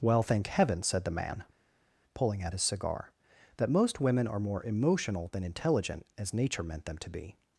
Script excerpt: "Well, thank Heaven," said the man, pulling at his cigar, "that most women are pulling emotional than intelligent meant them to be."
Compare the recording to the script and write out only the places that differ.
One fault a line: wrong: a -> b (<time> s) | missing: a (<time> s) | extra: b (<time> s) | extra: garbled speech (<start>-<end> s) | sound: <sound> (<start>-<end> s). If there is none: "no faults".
wrong: pulling -> more (4.4 s)
extra: as Nature (6.2 s)